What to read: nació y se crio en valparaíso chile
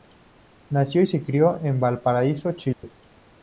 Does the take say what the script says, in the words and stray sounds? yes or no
no